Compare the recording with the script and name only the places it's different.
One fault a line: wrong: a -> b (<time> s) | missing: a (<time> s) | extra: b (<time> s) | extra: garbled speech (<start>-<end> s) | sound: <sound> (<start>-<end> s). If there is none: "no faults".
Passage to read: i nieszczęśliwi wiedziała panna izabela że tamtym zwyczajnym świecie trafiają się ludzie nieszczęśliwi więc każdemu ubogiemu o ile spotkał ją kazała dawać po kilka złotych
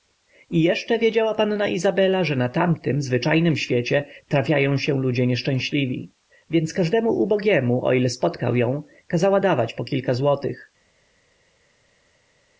wrong: nieszczęśliwi -> jeszcze (0.6 s)
extra: na (2.4 s)